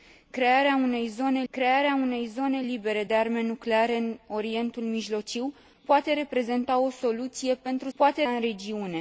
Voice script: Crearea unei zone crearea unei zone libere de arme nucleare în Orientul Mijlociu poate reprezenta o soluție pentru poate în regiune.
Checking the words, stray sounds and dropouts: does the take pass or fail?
pass